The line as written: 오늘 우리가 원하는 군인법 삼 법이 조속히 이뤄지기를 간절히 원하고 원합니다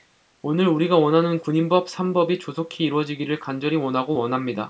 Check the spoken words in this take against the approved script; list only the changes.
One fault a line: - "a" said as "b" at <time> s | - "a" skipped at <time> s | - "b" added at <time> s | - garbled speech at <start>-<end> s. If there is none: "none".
none